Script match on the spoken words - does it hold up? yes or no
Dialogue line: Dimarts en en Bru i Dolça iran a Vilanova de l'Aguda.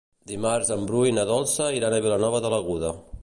no